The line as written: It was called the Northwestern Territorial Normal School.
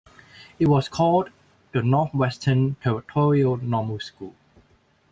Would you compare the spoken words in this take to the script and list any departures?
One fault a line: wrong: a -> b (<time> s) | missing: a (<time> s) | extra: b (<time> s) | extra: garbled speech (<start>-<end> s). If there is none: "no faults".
no faults